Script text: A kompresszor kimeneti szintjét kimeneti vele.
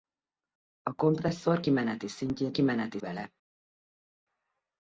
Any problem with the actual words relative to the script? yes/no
no